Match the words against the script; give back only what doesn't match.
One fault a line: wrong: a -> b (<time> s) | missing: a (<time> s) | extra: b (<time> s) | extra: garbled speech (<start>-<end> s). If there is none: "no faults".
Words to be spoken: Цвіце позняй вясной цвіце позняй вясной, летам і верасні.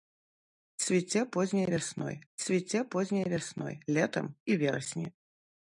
no faults